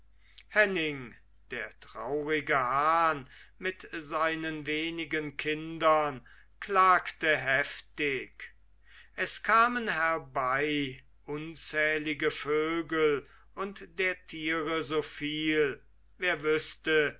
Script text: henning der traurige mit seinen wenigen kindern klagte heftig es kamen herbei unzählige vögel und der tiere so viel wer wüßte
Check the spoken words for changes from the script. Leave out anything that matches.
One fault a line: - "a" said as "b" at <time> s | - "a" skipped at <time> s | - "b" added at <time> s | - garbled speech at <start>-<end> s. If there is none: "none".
- "hahn" added at 2.6 s